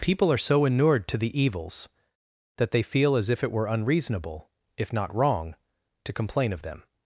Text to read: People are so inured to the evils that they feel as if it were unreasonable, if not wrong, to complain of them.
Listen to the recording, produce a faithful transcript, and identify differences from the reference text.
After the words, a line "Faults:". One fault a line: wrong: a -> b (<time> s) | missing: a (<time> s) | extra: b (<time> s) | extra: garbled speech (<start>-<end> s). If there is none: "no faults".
People are so inured to the evils that they feel as if it were unreasonable, if not wrong, to complain of them.
Faults:
no faults